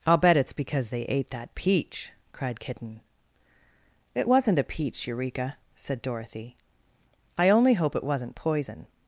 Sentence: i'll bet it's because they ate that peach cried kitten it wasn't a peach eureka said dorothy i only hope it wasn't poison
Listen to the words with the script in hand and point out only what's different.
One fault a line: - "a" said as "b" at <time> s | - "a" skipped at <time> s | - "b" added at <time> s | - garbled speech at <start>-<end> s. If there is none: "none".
none